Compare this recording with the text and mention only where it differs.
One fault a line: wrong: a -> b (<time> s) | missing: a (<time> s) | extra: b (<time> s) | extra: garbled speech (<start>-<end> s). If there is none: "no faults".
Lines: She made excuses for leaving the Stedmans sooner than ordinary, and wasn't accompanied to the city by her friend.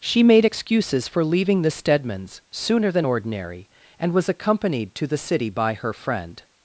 wrong: wasn't -> was (4.1 s)